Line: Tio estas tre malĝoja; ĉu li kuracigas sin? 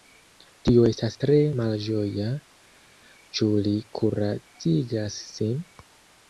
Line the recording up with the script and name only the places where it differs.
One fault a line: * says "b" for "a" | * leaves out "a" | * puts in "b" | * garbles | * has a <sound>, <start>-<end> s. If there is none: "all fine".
all fine